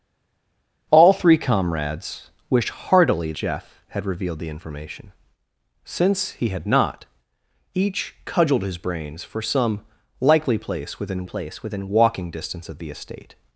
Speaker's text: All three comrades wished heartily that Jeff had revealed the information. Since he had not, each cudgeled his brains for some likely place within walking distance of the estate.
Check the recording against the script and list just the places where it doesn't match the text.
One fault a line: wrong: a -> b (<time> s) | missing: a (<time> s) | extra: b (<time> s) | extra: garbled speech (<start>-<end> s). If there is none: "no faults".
missing: that (3.3 s)
extra: place within (11.2 s)